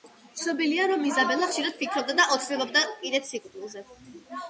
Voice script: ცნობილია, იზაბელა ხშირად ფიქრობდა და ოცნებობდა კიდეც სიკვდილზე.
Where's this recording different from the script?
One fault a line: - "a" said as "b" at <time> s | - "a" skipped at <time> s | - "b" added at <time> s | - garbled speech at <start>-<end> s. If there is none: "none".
- "რომ" added at 0.9 s